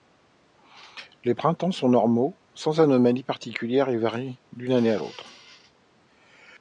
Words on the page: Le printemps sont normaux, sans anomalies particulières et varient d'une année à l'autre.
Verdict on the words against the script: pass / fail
fail